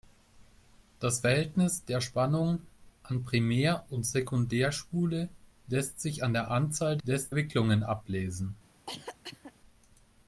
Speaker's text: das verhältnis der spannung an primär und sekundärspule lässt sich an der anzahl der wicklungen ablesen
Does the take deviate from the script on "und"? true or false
false